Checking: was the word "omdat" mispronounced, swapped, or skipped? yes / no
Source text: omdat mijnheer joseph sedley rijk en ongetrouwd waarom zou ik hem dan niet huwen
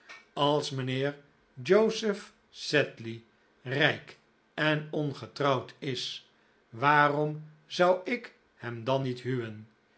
yes